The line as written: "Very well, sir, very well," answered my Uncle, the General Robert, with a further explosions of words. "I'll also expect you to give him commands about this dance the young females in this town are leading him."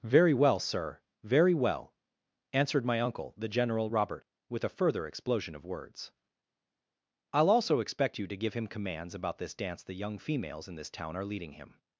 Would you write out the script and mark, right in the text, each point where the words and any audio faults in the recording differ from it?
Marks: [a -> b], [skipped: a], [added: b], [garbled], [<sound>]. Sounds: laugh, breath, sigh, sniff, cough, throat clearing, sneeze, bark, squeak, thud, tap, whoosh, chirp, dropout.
"Very well, sir, very well," answered my Uncle, the General Robert, with a further [explosions -> explosion] of words. "I'll also expect you to give him commands about this dance the young females in this town are leading him."